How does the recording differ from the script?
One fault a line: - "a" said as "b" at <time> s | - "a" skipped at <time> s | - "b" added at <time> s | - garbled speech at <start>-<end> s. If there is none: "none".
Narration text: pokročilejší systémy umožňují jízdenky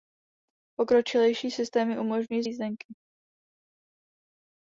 none